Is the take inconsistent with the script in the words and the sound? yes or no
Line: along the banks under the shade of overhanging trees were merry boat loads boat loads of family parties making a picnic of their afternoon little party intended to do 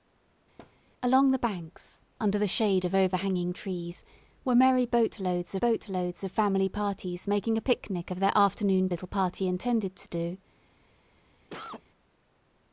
yes